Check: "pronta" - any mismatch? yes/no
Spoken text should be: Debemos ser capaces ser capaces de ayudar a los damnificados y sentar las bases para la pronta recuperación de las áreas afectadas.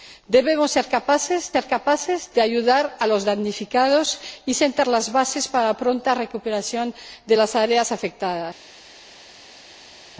no